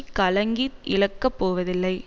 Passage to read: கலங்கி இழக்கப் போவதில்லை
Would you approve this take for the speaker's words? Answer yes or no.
yes